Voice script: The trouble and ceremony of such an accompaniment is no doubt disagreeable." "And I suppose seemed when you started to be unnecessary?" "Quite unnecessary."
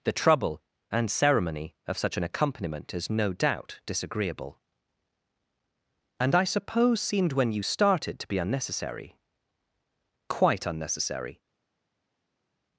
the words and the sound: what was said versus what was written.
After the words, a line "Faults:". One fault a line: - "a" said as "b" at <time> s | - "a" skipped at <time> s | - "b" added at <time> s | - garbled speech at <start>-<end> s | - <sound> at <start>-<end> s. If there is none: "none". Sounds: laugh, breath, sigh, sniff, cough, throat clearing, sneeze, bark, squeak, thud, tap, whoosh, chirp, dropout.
The trouble and ceremony of such an accompaniment is no doubt disagreeable." "And I suppose seemed when you started to be unnecessary?" "Quite unnecessary."
Faults:
none